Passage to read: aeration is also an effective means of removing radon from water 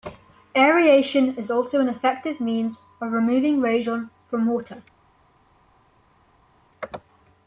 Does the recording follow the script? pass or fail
pass